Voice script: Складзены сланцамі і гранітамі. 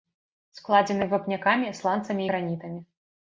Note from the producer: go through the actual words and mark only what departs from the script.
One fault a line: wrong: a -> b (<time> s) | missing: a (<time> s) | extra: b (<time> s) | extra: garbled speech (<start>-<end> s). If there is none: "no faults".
extra: вапнякамі (1.1 s)